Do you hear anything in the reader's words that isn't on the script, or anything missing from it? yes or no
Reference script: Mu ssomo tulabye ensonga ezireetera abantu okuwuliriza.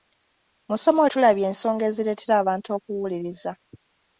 no